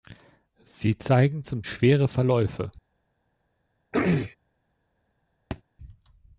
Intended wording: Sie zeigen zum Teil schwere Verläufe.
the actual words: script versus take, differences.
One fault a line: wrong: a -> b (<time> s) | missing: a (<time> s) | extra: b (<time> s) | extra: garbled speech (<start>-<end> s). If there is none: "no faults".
missing: Teil (1.6 s)